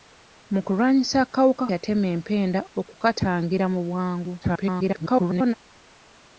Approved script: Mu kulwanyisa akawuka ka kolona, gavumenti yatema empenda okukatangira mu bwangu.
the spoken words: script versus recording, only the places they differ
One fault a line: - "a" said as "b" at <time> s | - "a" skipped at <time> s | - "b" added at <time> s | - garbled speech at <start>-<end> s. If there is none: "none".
- "ka kolona gavumenti" skipped at 1.6 s
- garbled speech at 4.4-5.5 s